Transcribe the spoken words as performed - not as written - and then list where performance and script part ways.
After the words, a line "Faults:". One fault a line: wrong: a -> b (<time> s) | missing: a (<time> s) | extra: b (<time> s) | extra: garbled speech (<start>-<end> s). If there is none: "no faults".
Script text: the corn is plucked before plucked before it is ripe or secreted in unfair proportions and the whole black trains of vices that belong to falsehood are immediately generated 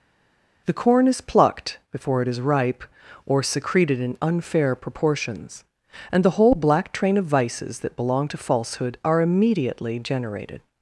the corn is plucked before it is ripe or secreted in unfair proportions and the whole black train of vices that belong to falsehood are immediately generated
Faults:
missing: plucked before (2.2 s)
wrong: trains -> train (6.9 s)